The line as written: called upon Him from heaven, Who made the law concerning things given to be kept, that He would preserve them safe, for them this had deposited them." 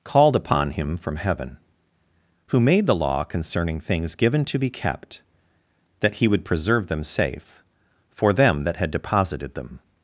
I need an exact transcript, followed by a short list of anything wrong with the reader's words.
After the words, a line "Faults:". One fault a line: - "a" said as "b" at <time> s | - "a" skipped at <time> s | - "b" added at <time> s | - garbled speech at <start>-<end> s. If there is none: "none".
called upon Him from heaven, Who made the law concerning things given to be kept, that He would preserve them safe, for them that had deposited them."
Faults:
- "this" said as "that" at 8.6 s